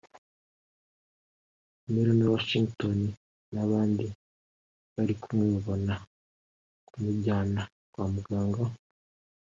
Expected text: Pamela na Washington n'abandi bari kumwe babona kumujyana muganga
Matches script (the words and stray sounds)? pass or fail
fail